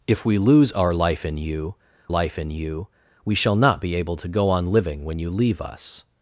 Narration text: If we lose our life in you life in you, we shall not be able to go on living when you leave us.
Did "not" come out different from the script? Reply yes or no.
no